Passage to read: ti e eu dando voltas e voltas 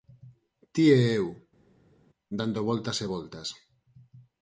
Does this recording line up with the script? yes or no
yes